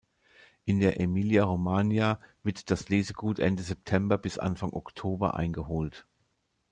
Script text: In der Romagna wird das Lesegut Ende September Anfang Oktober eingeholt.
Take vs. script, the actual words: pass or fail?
fail